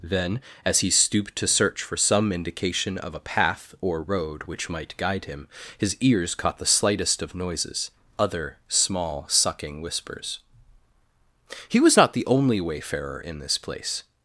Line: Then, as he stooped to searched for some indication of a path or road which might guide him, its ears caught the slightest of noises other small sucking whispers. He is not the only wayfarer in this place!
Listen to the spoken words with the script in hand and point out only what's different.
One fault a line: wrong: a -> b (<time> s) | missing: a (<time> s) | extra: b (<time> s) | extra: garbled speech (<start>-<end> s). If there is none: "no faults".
wrong: searched -> search (1.5 s)
wrong: its -> his (5.8 s)
wrong: is -> was (11.8 s)